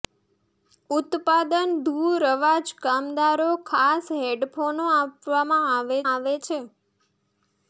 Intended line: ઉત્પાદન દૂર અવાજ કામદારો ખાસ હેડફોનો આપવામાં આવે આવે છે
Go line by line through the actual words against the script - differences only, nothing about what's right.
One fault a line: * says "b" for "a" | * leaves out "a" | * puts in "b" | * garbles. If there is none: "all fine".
all fine